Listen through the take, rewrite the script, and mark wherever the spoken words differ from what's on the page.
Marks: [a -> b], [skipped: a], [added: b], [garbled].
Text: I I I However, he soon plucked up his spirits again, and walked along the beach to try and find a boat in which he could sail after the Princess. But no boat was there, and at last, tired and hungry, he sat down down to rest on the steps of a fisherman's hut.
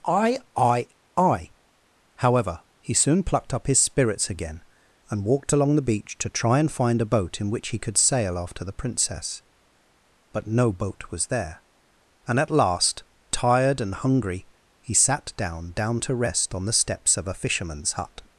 I I I However, he soon plucked up his spirits again, and walked along the beach to try and find a boat in which he could sail after the Princess. But no boat was there, and at last, tired and hungry, he sat down down to rest on the steps of a fisherman's hut.